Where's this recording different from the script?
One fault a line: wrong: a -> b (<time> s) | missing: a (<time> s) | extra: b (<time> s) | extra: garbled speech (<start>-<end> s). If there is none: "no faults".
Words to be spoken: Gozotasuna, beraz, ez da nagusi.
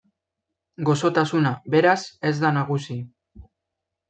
no faults